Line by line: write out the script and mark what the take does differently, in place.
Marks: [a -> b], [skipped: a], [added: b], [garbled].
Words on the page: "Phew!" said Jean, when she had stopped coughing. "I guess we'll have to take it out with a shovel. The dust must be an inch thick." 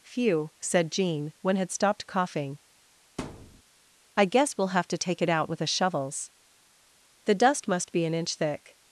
"Phew!" said Jean, when [skipped: she] had stopped coughing. "I guess we'll have to take it out with a [shovel. -> shovels] The dust must be an inch thick."